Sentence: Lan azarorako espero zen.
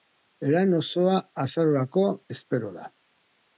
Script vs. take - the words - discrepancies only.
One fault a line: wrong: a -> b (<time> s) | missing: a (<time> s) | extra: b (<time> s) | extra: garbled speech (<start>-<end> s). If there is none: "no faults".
extra: osoa (0.8 s)
wrong: zen -> da (2.8 s)